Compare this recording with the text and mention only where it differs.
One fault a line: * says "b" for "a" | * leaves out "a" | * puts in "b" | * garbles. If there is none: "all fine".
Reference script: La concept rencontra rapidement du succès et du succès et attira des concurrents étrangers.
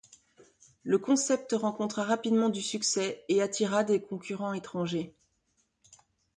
* says "Le" for "La"
* leaves out "du succès et"